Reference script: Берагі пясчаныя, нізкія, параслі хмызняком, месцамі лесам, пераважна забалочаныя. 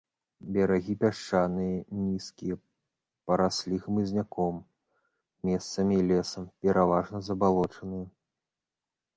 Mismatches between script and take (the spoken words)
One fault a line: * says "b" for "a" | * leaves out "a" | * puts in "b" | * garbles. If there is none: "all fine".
all fine